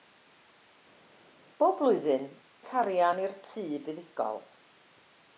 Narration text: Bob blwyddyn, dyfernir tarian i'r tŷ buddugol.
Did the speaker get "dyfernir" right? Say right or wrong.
wrong